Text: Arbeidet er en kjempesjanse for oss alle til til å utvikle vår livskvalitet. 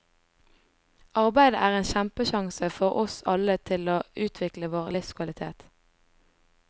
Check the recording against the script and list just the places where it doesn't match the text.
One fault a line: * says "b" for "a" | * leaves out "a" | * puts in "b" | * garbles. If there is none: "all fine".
* leaves out "til"